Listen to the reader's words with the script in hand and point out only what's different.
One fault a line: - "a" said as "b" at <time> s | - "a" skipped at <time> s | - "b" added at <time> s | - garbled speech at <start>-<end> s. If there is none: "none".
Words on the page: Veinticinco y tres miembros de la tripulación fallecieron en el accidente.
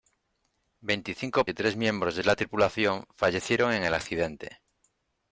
none